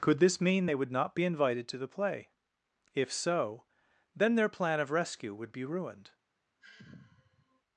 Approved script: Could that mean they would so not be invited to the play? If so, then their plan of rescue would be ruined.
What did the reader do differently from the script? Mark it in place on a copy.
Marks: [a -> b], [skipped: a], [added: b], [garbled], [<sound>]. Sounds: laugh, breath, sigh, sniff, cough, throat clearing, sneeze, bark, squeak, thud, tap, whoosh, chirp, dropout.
Could [that -> this] mean they would [skipped: so] not be invited to the play? If so, then their plan of rescue would be ruined. [sigh]